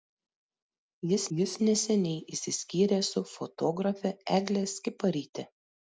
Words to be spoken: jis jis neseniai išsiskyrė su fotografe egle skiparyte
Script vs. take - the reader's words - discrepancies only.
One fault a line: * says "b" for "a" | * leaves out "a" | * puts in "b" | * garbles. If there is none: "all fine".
all fine